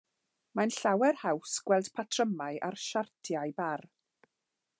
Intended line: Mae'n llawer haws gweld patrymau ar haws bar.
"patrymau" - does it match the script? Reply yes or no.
yes